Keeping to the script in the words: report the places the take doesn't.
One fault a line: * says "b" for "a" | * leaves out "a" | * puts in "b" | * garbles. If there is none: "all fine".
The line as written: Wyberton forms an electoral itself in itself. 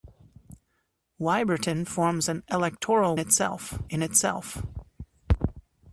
all fine